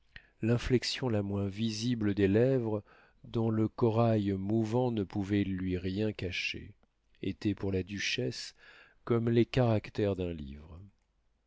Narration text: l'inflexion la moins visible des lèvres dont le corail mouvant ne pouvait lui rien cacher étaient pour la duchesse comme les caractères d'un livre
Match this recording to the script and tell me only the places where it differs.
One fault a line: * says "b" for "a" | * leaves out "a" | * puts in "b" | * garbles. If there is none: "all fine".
all fine